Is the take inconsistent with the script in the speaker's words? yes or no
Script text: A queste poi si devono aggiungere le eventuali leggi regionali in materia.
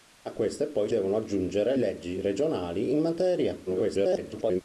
yes